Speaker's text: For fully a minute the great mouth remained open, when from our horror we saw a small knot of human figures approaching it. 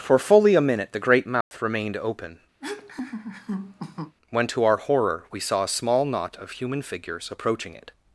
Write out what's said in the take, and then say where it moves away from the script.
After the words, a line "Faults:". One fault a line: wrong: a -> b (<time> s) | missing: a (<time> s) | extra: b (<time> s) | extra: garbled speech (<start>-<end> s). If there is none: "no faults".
For fully a minute the great mouth remained open, when to our horror we saw a small knot of human figures approaching it.
Faults:
wrong: from -> to (4.5 s)